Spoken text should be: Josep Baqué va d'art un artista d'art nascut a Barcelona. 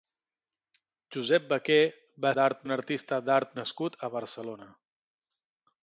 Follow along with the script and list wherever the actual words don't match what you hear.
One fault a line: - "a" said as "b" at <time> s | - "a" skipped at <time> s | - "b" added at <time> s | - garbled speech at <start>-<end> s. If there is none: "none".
none